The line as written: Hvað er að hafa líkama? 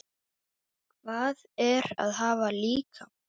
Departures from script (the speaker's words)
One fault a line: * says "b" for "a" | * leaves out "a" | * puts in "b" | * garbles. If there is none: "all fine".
all fine